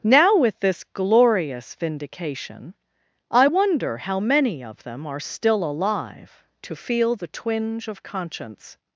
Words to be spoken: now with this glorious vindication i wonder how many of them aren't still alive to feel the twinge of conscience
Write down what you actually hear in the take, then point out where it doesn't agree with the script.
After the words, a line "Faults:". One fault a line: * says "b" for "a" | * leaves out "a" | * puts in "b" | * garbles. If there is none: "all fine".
now with this glorious vindication i wonder how many of them are still alive to feel the twinge of conscience
Faults:
* says "are" for "aren't"